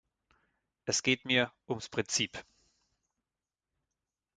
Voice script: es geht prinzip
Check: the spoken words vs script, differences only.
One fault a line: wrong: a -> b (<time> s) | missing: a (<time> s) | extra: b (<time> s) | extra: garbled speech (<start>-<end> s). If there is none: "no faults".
extra: mir ums (1.2 s)